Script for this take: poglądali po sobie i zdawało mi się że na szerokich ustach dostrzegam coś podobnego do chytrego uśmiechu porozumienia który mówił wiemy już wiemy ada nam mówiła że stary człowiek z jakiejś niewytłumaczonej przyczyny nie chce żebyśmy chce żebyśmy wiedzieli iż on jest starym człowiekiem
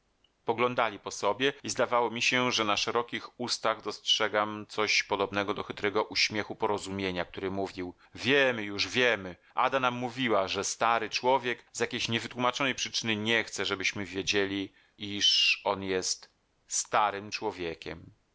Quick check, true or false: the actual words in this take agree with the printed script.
false